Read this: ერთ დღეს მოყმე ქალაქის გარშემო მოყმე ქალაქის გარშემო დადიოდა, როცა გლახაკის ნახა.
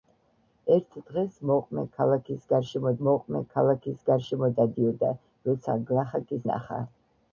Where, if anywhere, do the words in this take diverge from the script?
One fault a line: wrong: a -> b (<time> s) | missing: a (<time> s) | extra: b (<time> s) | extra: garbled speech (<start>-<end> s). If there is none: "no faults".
no faults